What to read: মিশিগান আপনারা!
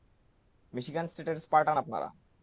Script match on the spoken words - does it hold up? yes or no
no